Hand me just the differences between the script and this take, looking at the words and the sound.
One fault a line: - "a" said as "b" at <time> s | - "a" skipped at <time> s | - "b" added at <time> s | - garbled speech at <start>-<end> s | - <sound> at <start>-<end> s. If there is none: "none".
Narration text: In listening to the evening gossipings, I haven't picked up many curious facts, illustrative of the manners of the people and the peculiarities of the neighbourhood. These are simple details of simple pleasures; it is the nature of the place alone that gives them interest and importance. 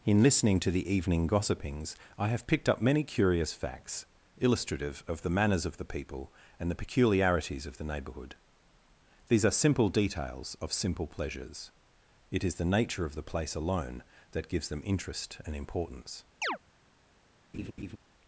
- "haven't" said as "have" at 2.3 s
- chirp at 16.4-16.6 s
- laugh at 17.5-18.0 s